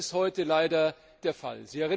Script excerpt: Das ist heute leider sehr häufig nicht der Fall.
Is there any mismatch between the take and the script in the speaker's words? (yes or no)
yes